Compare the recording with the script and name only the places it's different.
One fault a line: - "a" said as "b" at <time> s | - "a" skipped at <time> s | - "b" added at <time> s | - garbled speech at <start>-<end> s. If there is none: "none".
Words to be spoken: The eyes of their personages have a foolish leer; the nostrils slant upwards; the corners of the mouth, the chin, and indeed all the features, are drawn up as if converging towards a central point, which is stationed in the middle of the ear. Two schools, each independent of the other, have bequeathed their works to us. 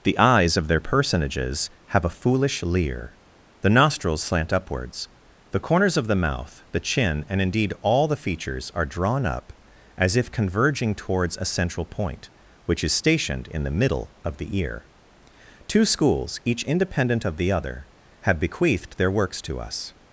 none